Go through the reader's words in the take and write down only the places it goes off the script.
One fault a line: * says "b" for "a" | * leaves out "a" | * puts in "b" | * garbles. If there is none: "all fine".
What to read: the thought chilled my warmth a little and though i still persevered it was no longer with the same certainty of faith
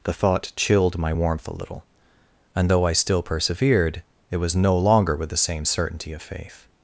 all fine